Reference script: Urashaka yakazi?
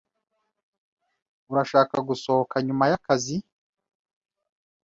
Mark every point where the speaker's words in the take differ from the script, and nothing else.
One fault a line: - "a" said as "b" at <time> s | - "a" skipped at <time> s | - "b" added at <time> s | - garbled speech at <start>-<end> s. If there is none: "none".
- "gusohoka nyuma" added at 2.1 s